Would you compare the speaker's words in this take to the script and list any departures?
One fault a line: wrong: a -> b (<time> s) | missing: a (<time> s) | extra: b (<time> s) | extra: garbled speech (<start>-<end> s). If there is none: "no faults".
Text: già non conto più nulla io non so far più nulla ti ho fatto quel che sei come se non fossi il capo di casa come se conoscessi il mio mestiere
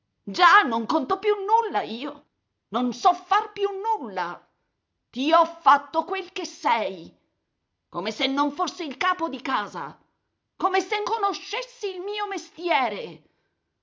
no faults